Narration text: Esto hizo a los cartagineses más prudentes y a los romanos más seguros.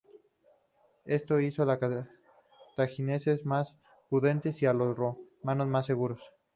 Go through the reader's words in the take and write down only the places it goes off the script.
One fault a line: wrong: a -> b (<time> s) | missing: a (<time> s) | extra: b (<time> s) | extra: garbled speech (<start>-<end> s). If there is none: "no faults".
no faults